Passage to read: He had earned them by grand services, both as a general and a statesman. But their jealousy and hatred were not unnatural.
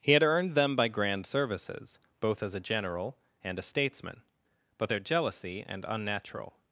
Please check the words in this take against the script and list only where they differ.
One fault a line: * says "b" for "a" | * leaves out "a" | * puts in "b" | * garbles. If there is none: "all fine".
* leaves out "hatred were not"